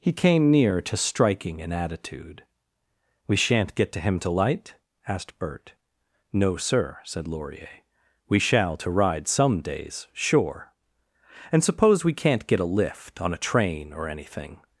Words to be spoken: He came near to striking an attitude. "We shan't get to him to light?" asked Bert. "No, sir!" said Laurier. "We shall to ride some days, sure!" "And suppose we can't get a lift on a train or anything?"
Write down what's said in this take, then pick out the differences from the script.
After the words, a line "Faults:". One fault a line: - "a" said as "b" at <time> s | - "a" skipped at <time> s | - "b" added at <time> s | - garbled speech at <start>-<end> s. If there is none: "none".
He came near to striking an attitude. "We shan't get to him to light?" asked Bert. "No, sir!" said Laurier. "We shall to ride some days, sure!" "And suppose we can't get a lift on a train or anything?"
Faults:
none